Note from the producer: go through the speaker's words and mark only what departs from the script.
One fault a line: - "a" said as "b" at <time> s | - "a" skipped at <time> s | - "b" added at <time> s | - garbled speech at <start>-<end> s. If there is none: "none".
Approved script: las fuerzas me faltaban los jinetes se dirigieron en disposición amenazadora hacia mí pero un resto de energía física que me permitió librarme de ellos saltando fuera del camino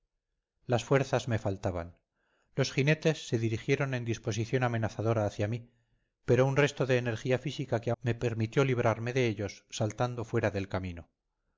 none